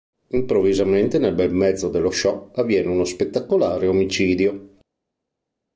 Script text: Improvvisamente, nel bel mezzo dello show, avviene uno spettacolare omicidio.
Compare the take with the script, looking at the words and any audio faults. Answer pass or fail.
pass